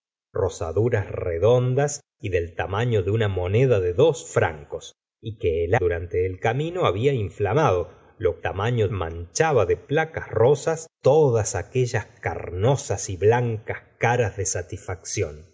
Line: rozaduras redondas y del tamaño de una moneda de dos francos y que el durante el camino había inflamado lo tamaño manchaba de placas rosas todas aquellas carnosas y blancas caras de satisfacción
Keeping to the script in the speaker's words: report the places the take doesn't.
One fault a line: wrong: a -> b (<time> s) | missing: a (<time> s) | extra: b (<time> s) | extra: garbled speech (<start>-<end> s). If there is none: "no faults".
no faults